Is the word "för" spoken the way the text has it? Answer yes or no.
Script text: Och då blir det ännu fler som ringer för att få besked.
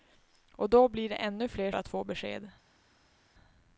no